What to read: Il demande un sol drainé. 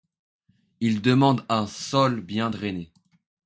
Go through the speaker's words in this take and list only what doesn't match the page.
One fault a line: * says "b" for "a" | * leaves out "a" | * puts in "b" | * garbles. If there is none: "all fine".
* puts in "bien"